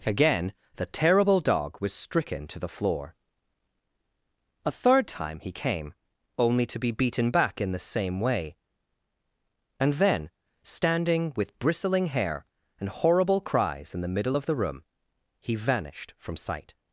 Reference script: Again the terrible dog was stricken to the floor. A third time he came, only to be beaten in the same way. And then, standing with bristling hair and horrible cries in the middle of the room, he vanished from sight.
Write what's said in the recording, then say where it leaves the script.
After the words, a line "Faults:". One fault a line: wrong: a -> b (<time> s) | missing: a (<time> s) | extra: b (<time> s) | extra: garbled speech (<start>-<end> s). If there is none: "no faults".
Again the terrible dog was stricken to the floor. A third time he came, only to be beaten back in the same way. And then, standing with bristling hair and horrible cries in the middle of the room, he vanished from sight.
Faults:
extra: back (7.3 s)